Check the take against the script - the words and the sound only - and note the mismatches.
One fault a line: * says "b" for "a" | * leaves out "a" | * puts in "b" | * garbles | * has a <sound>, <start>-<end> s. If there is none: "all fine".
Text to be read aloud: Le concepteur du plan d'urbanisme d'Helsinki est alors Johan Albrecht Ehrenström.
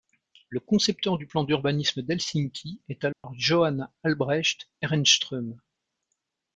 * has a dropout, 3.1-3.2 s